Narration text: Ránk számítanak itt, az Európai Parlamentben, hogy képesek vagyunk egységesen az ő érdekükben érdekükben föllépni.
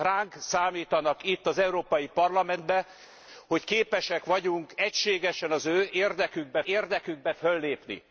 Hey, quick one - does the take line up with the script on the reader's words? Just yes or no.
yes